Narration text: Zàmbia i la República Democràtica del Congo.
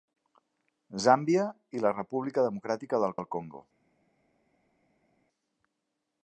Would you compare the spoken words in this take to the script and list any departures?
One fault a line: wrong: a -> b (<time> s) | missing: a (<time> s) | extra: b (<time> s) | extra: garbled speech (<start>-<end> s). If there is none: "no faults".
extra: del (3.2 s)